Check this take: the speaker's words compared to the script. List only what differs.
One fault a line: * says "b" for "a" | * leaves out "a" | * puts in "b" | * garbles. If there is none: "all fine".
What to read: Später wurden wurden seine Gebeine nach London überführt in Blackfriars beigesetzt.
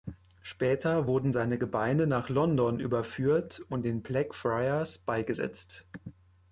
* leaves out "wurden"
* puts in "und"